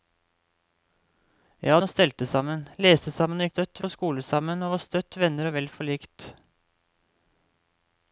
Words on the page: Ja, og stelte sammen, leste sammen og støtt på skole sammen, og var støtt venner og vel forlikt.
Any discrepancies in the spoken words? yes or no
no